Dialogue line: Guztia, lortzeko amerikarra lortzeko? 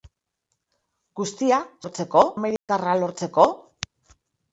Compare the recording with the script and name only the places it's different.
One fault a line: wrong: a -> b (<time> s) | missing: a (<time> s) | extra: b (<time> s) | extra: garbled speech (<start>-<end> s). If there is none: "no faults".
no faults